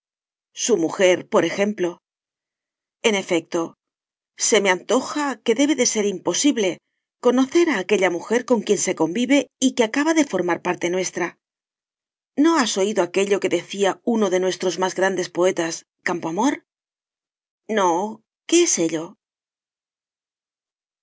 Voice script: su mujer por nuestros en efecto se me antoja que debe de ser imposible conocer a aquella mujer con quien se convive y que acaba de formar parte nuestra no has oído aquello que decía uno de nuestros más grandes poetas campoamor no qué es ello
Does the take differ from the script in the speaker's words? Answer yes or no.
yes